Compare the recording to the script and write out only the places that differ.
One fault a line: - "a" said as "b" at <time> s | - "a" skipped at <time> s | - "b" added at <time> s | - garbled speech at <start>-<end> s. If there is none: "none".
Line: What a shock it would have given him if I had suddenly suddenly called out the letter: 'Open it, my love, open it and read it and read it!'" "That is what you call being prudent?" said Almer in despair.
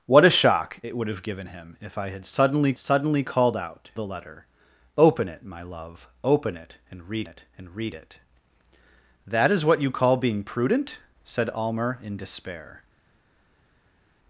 none